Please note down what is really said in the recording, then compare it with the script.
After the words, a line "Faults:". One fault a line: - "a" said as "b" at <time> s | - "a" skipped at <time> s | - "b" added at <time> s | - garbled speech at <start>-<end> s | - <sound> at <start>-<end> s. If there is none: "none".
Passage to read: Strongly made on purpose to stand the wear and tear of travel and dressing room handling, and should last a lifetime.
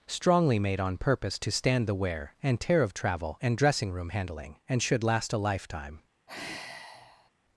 Strongly made on purpose to stand the wear and tear of travel and dressing room handling, and should last a lifetime.
Faults:
- sigh at 6.3-7.3 s